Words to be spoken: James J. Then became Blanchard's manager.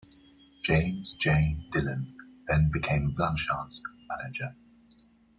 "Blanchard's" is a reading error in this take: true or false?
false